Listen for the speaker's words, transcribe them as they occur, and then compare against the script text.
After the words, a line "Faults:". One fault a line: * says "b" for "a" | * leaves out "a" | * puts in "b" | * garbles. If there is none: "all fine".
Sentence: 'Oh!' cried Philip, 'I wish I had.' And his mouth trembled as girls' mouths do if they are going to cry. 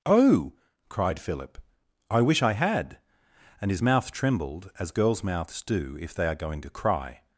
'Oh!' cried Philip, 'I wish I had.' And his mouth trembled as girls' mouths do if they are going to cry.
Faults:
all fine